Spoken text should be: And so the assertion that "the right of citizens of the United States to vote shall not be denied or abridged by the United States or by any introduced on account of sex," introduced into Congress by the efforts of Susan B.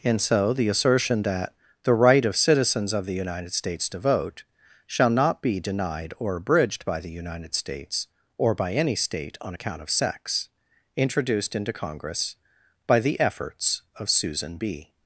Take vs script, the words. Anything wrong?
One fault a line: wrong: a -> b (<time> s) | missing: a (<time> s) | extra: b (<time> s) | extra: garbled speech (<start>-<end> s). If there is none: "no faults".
wrong: introduced -> state (8.9 s)